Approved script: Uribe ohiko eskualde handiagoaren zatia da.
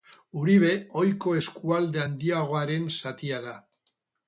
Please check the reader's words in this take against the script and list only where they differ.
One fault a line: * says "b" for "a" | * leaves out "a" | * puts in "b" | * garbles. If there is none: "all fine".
all fine